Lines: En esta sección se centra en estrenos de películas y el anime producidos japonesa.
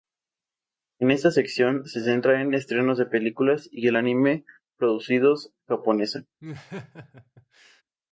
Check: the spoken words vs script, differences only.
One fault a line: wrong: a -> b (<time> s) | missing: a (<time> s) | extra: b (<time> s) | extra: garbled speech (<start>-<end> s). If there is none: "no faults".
no faults